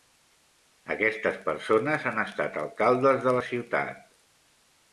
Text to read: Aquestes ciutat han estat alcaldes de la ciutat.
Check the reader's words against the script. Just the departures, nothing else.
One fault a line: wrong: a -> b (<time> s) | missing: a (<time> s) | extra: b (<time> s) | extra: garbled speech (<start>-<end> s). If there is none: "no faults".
wrong: ciutat -> persones (1.4 s)